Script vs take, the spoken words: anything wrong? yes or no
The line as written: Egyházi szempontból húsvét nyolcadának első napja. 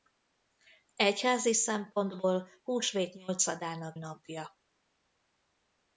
yes